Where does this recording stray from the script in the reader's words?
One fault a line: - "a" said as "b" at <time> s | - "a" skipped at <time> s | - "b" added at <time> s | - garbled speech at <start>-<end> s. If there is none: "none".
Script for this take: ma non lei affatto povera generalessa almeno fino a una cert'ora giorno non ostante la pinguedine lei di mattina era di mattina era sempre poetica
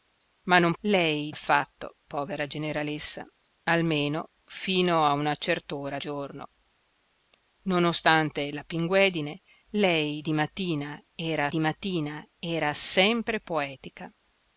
none